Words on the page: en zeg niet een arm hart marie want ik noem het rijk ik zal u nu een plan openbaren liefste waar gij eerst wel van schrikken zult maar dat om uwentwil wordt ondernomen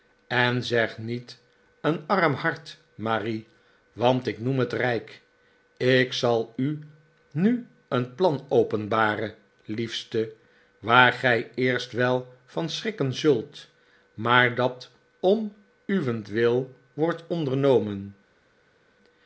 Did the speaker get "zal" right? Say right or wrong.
right